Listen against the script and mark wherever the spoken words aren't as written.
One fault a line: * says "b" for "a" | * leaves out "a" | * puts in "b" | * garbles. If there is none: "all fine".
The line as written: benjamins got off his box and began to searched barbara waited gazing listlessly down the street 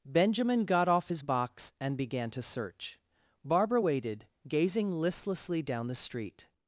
* says "benjamin" for "benjamins"
* says "search" for "searched"